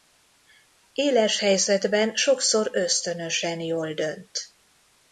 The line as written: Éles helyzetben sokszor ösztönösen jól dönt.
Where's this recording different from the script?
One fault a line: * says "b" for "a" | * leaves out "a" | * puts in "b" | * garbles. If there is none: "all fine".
all fine